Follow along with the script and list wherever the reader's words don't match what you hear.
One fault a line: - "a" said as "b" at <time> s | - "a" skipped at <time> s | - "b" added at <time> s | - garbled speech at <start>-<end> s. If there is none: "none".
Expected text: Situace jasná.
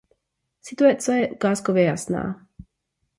- "je ukázkově" added at 1.2 s